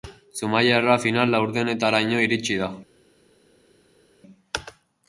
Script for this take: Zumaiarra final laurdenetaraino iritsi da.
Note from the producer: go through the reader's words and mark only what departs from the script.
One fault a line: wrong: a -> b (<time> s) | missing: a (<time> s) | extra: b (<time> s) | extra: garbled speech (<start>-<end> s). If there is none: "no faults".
no faults